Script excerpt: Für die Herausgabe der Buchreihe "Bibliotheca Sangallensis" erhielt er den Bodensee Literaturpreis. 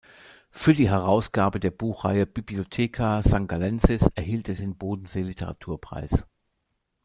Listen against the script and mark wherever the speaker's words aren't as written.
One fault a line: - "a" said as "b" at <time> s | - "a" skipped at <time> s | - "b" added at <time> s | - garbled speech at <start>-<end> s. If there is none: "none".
none